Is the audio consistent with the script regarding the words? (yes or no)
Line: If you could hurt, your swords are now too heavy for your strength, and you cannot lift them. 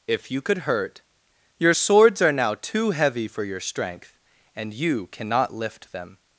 yes